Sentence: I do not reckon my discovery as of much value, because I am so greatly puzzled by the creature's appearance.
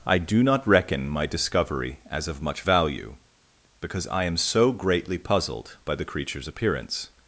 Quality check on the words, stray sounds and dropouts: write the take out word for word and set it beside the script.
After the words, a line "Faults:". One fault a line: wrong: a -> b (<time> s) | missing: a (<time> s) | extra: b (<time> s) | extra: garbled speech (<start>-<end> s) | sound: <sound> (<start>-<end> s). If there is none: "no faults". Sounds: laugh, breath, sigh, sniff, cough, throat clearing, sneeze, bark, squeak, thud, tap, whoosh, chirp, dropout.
I do not reckon my discovery as of much value, because I am so greatly puzzled by the creature's appearance.
Faults:
no faults